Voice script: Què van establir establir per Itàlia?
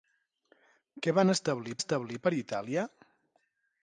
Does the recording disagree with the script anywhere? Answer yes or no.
no